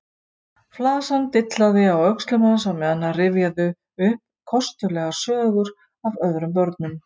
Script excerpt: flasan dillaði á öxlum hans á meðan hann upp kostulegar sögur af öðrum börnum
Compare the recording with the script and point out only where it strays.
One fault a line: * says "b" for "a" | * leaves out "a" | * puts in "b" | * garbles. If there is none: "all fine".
* puts in "rifjaði"